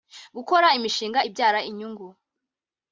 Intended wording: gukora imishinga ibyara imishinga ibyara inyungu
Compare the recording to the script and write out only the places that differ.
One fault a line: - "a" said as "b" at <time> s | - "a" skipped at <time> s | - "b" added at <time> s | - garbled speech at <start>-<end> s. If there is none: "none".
- "imishinga ibyara" skipped at 1.6 s